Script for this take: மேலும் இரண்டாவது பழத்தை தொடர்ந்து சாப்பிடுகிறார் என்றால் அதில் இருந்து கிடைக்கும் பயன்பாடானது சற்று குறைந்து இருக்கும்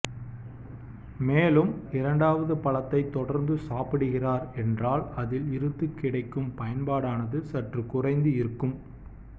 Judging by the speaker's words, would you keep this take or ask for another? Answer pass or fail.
pass